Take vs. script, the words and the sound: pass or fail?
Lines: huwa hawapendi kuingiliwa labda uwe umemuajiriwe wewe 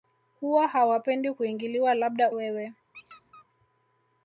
fail